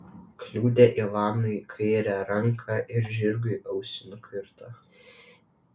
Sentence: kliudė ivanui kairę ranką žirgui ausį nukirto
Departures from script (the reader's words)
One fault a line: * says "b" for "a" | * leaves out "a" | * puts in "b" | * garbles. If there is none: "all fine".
* puts in "ir"